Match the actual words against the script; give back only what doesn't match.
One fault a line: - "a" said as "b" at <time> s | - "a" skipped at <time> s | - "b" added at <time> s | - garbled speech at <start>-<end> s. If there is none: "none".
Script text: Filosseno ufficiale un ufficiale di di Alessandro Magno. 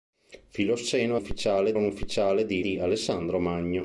none